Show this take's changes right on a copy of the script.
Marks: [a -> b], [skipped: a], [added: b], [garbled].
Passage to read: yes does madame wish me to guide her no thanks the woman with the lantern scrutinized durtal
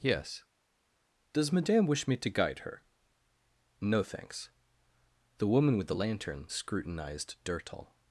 yes does madame wish me to guide her no thanks the woman with the lantern scrutinized durtal